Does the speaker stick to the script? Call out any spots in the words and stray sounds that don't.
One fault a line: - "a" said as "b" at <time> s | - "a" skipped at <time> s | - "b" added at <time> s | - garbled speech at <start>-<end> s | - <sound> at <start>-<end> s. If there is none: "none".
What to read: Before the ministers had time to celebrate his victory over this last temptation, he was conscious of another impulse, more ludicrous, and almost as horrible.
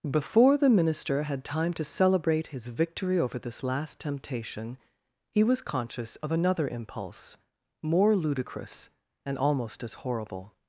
- "ministers" said as "minister" at 0.7 s